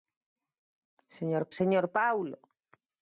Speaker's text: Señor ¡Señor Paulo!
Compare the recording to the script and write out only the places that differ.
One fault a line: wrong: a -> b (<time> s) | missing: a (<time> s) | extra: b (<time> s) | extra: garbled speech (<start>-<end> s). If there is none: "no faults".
no faults